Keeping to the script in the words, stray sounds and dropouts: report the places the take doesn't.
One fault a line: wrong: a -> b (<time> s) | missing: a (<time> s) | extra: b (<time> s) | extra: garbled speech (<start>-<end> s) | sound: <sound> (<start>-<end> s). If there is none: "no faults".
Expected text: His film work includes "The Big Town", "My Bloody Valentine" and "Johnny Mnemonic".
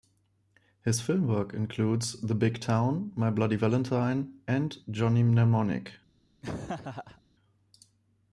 sound: laugh (6.4-7.2 s)